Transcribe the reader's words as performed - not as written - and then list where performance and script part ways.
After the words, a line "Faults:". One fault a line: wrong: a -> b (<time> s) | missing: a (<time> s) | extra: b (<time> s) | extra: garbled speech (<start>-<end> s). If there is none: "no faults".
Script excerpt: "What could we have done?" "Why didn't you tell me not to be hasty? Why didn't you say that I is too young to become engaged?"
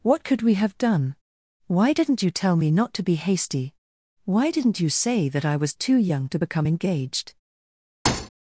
"What could we have done?" "Why didn't you tell me not to be hasty? Why didn't you say that I was too young to become engaged?"
Faults:
wrong: is -> was (5.6 s)